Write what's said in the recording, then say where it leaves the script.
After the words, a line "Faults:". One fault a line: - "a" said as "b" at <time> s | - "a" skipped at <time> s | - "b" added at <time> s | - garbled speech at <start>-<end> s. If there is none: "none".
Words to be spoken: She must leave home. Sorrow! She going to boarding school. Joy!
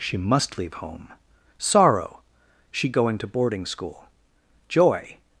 She must leave home. Sorrow! She going to boarding school. Joy!
Faults:
none